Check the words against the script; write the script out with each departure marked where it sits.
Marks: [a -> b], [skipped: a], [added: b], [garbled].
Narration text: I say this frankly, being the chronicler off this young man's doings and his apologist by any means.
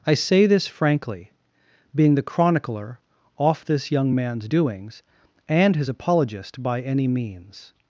I say this frankly, being the chronicler off this young man's doings and his apologist by any means.